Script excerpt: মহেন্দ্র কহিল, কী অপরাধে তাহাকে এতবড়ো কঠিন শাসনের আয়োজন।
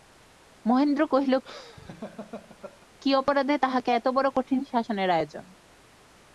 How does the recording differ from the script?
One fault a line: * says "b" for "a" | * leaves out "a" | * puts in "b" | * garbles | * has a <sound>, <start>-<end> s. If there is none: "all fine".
* has a laugh, 1.4-2.9 s